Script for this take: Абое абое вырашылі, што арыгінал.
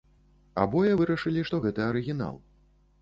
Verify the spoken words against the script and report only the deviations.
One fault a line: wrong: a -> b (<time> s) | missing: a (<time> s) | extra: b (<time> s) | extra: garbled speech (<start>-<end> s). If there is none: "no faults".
missing: абое (0.9 s)
extra: гэта (1.7 s)